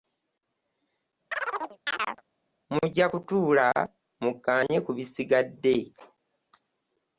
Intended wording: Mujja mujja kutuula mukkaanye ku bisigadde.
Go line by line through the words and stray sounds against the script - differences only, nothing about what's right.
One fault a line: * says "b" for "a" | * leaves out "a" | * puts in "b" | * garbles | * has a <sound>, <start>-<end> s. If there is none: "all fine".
* has a chirp, 1.3-2.2 s
* leaves out "mujja"